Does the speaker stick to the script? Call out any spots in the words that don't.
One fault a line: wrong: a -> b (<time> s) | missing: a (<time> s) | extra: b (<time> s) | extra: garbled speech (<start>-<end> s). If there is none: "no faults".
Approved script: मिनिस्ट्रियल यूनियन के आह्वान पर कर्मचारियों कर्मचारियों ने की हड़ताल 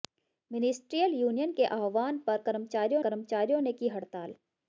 no faults